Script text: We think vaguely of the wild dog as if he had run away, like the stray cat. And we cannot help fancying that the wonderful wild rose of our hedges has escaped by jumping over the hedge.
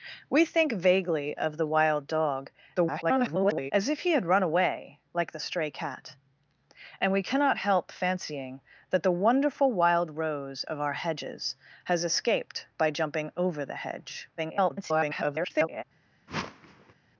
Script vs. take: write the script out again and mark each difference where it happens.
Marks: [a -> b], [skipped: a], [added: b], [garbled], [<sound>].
We think vaguely of the wild dog [garbled] as if he had run away, like the stray cat. And we cannot help fancying that the wonderful wild rose of our hedges has escaped by jumping over the hedge. [garbled] [whoosh]